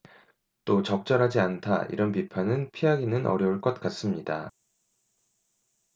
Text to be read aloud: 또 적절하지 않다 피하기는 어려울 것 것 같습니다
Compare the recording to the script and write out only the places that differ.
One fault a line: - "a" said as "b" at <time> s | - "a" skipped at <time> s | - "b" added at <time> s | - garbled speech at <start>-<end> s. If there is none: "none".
- "이런 비판은" added at 1.9 s
- "것" skipped at 3.8 s